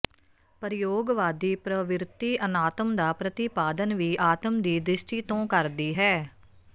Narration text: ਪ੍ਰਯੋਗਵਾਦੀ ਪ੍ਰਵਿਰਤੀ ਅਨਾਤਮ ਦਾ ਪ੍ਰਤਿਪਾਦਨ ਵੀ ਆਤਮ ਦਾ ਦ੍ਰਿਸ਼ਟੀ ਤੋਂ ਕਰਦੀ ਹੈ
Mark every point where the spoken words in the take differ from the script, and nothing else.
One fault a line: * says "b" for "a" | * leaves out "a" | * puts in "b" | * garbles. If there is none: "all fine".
* says "ਦੀ" for "ਦਾ"